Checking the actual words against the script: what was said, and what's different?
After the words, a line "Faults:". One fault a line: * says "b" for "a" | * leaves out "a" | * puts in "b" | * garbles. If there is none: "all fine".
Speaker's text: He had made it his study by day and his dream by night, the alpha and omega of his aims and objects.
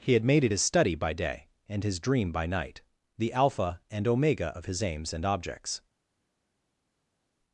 He had made it his study by day and his dream by night, the alpha and omega of his aims and objects.
Faults:
all fine